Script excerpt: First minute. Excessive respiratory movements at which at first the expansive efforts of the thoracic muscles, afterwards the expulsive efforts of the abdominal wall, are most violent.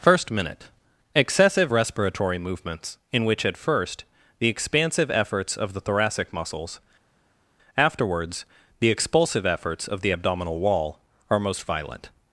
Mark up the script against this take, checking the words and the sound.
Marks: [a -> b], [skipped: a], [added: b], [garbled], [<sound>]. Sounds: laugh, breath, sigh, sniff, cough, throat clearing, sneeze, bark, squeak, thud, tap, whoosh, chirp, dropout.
First minute. Excessive respiratory movements [at -> in] which at first the expansive efforts of the thoracic muscles, afterwards the expulsive efforts of the abdominal wall, are most violent.